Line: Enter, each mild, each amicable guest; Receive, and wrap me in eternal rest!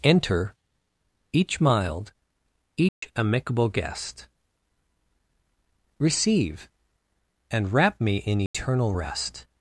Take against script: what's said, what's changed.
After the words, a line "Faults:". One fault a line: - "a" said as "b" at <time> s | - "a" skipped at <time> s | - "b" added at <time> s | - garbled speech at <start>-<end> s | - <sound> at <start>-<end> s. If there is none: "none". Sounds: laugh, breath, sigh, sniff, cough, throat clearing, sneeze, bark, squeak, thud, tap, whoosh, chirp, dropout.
Enter, each mild, each amicable guest; Receive, and wrap me in eternal rest!
Faults:
- dropout at 2.9-3.0 s
- dropout at 8.5-8.5 s